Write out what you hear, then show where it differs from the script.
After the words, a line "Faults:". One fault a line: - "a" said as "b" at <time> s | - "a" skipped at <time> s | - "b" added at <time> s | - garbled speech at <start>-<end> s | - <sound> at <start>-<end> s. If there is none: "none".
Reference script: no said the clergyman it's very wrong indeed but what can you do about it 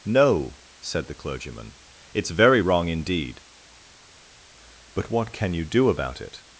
no said the clergyman it's very wrong indeed but what can you do about it
Faults:
none